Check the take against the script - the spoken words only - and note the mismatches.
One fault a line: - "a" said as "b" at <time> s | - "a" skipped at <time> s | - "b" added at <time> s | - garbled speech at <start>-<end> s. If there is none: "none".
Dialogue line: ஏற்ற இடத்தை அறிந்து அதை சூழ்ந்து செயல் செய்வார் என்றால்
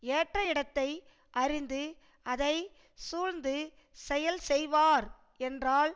none